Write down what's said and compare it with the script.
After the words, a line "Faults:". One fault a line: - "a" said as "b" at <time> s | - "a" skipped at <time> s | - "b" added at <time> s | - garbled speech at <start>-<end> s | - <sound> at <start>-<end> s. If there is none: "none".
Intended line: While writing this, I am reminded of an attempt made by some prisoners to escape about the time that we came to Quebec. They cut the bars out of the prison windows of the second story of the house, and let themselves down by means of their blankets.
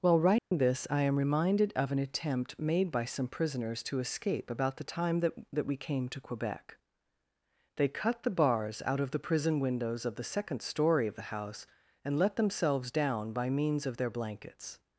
While writing this, I am reminded of an attempt made by some prisoners to escape about the time that that we came to Quebec. They cut the bars out of the prison windows of the second story of the house, and let themselves down by means of their blankets.
Faults:
- dropout at 0.4-0.5 s
- "that" added at 5.5 s